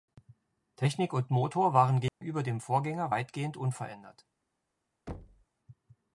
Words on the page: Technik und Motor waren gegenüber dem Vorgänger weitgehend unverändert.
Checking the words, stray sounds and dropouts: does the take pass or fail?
fail